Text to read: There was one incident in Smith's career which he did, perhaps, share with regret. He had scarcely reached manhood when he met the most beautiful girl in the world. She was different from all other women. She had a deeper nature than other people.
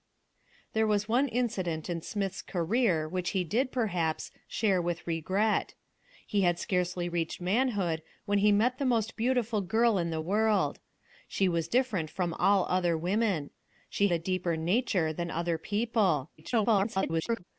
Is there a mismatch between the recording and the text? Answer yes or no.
yes